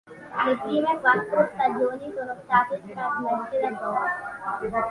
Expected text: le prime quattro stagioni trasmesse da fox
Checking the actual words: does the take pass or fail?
fail